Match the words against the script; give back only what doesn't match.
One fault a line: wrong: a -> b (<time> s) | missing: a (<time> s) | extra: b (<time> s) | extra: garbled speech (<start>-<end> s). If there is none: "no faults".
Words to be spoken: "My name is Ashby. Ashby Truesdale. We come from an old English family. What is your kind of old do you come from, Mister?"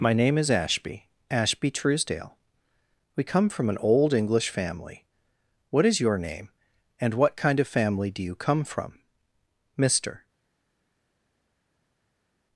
extra: name and what (6.2 s)
wrong: old -> family (7.7 s)